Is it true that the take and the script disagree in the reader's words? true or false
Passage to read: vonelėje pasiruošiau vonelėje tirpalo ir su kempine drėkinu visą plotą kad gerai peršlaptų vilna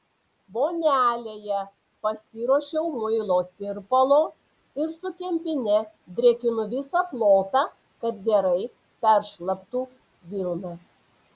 true